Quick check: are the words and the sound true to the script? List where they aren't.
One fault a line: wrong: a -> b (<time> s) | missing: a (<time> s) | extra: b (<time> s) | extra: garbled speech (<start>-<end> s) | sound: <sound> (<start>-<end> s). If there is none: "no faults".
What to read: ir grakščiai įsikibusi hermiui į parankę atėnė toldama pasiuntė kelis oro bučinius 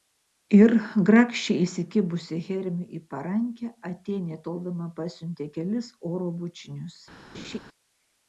sound: laugh (7.3-7.6 s)